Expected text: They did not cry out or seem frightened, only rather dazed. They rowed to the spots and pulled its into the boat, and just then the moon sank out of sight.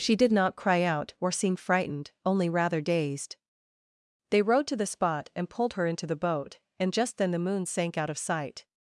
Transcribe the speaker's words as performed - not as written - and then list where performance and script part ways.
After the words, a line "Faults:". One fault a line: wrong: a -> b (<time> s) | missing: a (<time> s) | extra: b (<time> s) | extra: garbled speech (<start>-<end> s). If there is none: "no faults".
She did not cry out or seem frightened, only rather dazed. They rowed to the spot and pulled her into the boat, and just then the moon sank out of sight.
Faults:
wrong: They -> She (0.0 s)
wrong: spots -> spot (4.9 s)
wrong: its -> her (5.7 s)